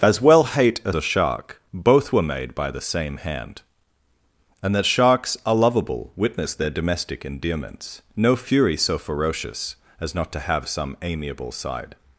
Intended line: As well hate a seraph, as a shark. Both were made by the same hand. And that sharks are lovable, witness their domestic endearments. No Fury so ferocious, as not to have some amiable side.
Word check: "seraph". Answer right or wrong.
wrong